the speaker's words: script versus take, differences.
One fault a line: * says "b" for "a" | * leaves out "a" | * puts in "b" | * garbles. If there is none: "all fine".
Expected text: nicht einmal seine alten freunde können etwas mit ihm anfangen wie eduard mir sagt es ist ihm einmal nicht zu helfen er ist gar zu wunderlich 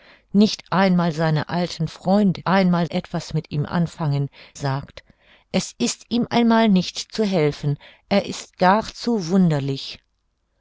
* says "einmal" for "können"
* leaves out "wie eduard mir"